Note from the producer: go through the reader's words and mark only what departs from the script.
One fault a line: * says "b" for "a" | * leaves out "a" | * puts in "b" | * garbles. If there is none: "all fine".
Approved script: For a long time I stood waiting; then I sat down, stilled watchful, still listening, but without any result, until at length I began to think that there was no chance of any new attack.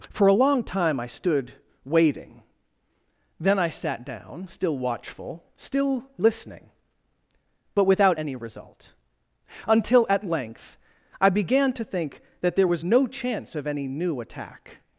* says "still" for "stilled"